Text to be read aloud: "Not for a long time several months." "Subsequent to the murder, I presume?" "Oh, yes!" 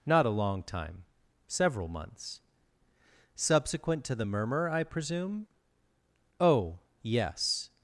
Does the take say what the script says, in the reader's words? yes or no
no